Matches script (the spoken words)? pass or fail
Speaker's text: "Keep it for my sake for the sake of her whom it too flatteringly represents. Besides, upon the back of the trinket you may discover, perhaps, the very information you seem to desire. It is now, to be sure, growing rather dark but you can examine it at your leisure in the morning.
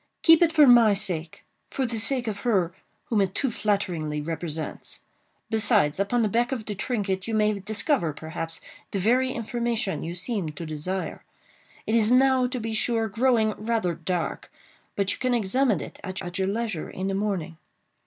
fail